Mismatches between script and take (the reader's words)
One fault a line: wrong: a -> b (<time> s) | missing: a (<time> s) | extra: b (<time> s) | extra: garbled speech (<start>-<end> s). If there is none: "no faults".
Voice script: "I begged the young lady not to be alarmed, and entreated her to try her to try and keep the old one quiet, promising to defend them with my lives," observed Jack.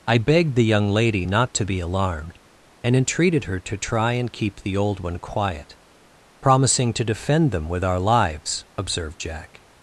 missing: her to try (4.1 s)
wrong: my -> our (7.8 s)